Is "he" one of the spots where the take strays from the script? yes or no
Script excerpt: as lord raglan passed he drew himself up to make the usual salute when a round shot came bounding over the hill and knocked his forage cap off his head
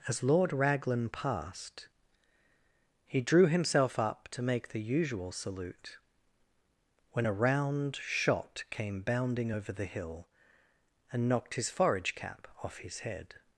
no